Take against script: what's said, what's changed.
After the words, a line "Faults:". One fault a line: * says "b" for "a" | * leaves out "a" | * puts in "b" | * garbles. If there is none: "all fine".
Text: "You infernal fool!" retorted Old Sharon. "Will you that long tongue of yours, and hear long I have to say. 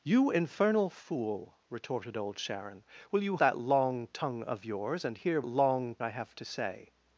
"You infernal fool!" retorted Old Sharon. "Will you that long tongue of yours, and hear long I have to say.
Faults:
all fine